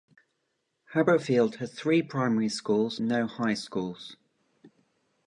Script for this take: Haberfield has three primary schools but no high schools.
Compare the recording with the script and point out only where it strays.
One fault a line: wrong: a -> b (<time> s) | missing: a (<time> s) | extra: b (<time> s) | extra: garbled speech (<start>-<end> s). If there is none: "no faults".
missing: but (3.0 s)